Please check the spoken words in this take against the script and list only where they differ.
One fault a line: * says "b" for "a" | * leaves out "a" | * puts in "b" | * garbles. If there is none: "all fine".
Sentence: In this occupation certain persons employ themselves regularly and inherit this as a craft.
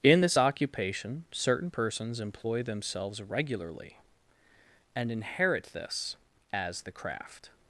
* says "the" for "a"